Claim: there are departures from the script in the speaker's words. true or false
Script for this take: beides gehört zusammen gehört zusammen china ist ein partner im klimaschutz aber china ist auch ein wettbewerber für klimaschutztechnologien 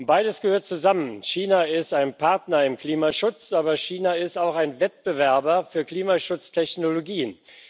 true